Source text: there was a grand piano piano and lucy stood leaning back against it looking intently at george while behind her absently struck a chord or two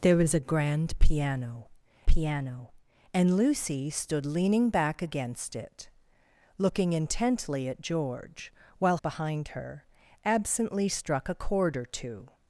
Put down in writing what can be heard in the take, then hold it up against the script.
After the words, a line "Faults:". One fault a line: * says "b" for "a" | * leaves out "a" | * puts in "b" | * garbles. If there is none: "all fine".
there was a grand piano piano and lucy stood leaning back against it looking intently at george while behind her absently struck a chord or two
Faults:
all fine